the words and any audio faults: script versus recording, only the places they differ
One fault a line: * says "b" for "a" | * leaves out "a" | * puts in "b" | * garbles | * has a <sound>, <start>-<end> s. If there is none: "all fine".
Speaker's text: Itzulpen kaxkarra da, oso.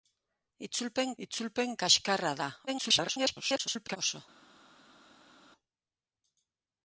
* puts in "itzulpen"
* garbles